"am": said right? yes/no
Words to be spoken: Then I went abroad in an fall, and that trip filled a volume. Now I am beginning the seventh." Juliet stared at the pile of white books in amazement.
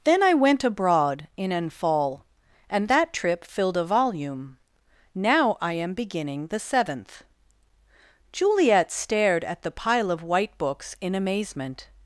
yes